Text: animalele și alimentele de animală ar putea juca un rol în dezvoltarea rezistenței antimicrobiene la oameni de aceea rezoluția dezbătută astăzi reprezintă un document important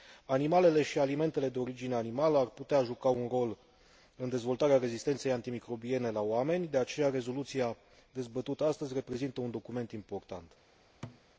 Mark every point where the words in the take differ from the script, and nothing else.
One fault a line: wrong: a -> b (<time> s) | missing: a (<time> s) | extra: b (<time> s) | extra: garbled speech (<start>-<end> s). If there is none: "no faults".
extra: origine (1.6 s)